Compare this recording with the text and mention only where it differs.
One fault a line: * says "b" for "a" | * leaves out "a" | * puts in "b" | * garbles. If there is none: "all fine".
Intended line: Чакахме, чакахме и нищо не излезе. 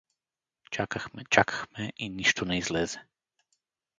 all fine